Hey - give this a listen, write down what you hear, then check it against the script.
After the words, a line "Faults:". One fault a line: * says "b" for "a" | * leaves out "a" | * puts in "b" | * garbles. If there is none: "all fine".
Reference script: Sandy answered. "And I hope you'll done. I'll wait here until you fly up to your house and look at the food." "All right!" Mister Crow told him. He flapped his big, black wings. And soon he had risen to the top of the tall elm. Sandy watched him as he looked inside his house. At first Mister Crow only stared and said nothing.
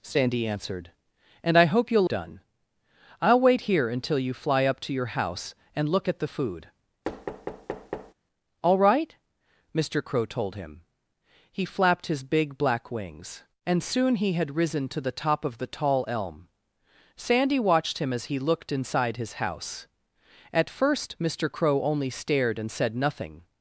Sandy answered. "And I hope you'll done. I'll wait here until you fly up to your house and look at the food." "All right!" Mister Crow told him. He flapped his big, black wings. And soon he had risen to the top of the tall elm. Sandy watched him as he looked inside his house. At first Mister Crow only stared and said nothing.
Faults:
all fine